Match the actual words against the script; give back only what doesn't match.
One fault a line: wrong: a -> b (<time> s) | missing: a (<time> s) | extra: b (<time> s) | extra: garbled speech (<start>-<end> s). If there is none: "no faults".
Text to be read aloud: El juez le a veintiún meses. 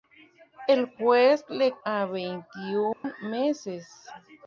no faults